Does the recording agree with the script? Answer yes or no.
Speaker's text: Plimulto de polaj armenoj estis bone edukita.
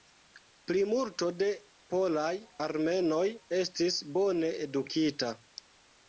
yes